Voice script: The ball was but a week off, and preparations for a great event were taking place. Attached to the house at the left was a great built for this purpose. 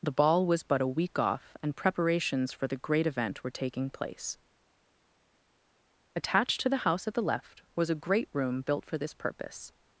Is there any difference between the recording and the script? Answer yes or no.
yes